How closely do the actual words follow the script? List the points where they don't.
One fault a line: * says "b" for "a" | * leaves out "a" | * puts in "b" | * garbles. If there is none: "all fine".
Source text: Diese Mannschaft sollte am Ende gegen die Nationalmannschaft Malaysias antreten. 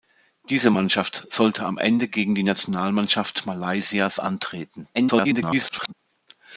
* garbles